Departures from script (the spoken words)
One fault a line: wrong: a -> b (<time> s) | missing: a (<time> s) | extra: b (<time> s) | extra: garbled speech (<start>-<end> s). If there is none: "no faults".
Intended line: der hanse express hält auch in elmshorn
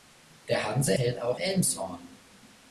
missing: express (0.9 s)
missing: in (1.4 s)